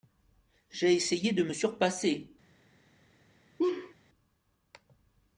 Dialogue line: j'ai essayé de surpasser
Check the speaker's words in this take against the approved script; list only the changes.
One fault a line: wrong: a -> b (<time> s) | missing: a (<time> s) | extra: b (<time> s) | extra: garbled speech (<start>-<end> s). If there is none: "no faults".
extra: me (1.4 s)